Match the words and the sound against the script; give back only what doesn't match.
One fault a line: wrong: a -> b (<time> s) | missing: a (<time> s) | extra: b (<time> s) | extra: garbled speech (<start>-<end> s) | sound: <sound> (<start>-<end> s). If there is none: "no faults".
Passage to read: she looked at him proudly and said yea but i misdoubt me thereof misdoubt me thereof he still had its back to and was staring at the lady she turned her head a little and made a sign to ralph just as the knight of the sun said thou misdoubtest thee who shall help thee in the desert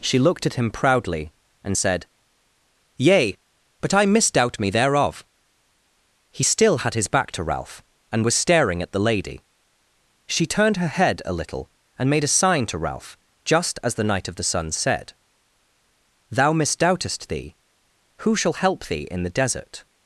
missing: misdoubt me thereof (5.2 s)
wrong: its -> his (6.9 s)
extra: ralph (7.4 s)